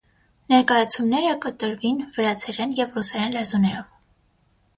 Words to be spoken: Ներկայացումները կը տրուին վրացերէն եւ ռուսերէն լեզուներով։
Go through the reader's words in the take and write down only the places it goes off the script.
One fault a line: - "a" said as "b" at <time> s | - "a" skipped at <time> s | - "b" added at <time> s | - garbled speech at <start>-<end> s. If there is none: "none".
none